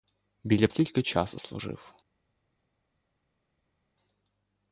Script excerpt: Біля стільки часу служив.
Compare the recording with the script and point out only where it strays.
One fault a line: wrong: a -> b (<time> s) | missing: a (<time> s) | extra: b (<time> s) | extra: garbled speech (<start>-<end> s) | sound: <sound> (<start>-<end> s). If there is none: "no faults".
no faults